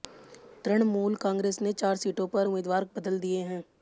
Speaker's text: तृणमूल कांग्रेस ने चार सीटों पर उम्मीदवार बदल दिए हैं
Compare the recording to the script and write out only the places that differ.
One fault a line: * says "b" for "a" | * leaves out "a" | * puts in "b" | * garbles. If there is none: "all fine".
all fine